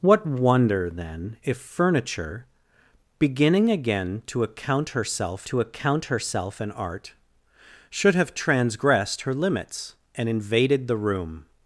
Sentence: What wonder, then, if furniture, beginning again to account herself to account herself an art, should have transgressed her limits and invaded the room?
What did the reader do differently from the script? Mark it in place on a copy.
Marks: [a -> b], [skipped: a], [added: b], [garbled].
What wonder, then, if furniture, beginning again to account herself to account herself an art, should have transgressed her limits and invaded the room?